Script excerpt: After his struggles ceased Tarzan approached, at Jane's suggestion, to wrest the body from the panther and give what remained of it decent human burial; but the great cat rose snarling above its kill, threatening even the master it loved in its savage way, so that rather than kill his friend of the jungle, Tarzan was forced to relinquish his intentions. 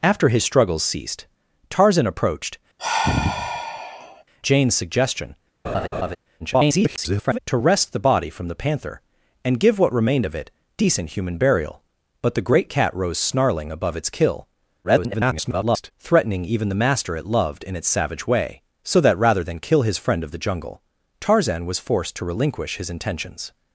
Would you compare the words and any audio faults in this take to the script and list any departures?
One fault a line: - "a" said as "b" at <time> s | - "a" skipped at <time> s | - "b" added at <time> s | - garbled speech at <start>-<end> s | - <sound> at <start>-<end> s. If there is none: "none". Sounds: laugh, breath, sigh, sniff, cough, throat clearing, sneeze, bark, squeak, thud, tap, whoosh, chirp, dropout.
- "at" skipped at 2.6 s
- sigh at 2.8-4.2 s
- laugh at 5.6-6.2 s
- garbled speech at 6.4-7.4 s
- garbled speech at 14.8-15.9 s